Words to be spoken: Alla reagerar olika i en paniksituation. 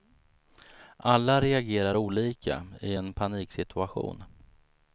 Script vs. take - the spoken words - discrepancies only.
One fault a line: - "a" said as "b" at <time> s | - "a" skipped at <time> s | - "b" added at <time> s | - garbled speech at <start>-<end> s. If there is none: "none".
none